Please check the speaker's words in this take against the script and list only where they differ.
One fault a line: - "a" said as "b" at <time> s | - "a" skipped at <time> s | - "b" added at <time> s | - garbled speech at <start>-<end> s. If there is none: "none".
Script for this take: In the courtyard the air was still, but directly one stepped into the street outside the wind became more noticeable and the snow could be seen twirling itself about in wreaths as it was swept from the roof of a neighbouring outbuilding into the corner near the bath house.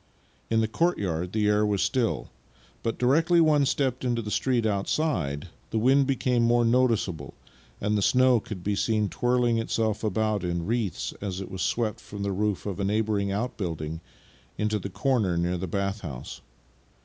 none